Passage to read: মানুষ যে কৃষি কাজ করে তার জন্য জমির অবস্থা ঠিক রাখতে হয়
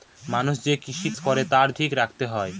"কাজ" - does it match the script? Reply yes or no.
no